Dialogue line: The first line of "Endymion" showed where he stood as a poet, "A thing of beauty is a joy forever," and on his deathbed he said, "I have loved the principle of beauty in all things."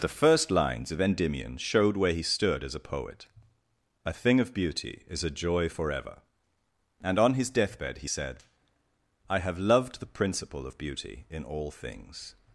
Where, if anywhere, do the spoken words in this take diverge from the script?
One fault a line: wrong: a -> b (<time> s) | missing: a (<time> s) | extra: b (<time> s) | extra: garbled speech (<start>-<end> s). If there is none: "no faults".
wrong: line -> lines (0.5 s)